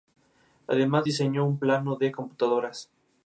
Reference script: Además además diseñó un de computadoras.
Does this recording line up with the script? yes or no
no